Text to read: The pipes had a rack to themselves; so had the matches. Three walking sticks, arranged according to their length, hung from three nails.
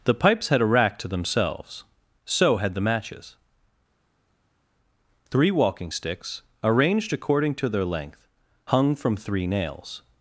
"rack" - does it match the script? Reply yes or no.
yes